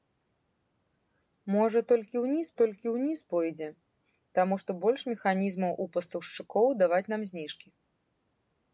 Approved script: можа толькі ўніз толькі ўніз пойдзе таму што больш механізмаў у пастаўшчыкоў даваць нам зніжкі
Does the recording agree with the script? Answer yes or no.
yes